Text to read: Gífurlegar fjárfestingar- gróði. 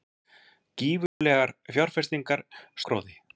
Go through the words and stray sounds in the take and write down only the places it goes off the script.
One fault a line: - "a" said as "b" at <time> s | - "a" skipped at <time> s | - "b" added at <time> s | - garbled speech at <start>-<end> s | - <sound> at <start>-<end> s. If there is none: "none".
- dropout at 1.1-1.2 s